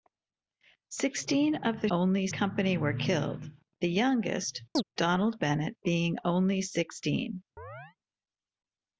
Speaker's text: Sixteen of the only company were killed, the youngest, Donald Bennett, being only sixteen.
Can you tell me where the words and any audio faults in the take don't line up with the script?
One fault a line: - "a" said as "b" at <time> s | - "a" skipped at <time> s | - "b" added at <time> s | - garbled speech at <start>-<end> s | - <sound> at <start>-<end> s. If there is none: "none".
- chirp at 4.8-4.8 s
- chirp at 7.6-8.0 s